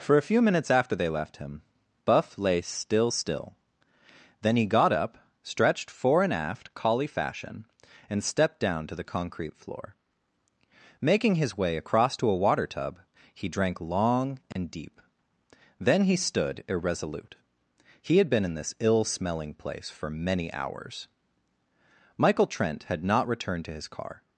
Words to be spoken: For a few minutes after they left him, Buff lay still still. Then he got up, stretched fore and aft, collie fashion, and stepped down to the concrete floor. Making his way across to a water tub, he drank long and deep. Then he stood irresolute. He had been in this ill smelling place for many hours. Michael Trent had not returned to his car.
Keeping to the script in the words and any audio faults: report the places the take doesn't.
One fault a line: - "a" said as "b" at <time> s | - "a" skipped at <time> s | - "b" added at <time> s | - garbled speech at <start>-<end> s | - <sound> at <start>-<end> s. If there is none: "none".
- dropout at 14.5-14.6 s